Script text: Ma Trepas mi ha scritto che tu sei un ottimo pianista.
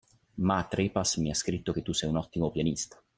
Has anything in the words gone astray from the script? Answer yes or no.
no